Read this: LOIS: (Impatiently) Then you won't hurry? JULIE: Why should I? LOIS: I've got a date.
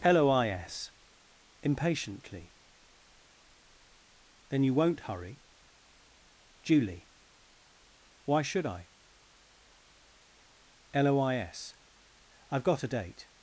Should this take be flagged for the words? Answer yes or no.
no